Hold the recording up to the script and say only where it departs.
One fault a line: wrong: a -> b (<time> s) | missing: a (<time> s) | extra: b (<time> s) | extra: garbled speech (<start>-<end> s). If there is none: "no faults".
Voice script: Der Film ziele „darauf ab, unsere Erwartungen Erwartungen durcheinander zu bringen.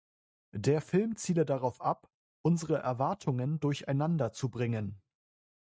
missing: Erwartungen (3.6 s)